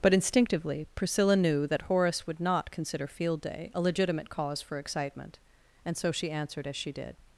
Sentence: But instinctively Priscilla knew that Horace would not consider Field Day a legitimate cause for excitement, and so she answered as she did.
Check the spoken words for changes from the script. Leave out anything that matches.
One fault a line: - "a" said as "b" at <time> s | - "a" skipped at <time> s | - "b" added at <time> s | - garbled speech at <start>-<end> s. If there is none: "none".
none